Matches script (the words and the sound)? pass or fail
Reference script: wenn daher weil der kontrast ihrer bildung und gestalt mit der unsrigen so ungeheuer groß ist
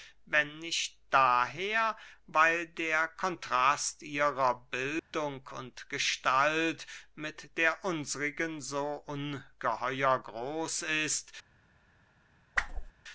fail